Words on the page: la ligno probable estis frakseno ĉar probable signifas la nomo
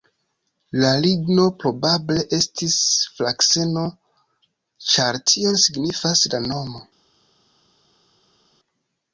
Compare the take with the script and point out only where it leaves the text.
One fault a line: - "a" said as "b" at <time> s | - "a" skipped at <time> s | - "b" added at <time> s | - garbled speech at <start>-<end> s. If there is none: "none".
- "probable" said as "tion" at 5.3 s